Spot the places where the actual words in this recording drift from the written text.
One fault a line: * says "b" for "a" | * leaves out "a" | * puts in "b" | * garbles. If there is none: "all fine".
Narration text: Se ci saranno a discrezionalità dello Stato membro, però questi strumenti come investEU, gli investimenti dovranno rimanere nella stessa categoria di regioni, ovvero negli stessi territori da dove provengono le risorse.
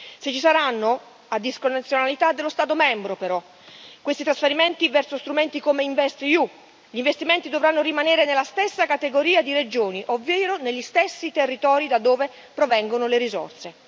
* puts in "trasferimenti verso"